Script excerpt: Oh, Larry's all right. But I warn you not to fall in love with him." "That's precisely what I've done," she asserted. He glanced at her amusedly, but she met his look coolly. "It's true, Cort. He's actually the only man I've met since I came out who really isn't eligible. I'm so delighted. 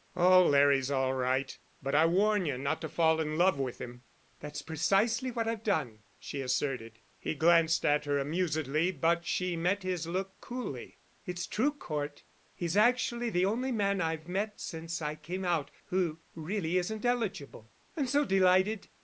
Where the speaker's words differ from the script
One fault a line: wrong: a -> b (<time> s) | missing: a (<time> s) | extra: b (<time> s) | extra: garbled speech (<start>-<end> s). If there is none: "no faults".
no faults